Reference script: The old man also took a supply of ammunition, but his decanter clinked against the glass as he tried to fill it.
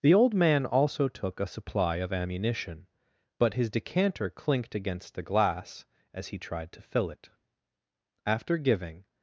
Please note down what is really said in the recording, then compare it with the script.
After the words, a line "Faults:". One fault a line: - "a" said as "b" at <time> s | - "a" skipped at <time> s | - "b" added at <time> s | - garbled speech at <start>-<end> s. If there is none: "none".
The old man also took a supply of ammunition, but his decanter clinked against the glass as he tried to fill it. After giving
Faults:
- "After giving" added at 8.2 s